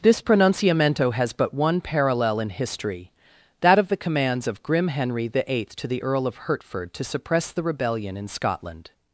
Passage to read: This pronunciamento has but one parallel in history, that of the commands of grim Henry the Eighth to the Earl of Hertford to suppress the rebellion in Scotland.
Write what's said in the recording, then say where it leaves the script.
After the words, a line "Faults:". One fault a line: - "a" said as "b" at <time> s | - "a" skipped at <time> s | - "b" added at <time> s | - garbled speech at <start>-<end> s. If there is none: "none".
This pronunciamento has but one parallel in history, that of the commands of grim Henry the Eighth to the Earl of Hertford to suppress the rebellion in Scotland.
Faults:
none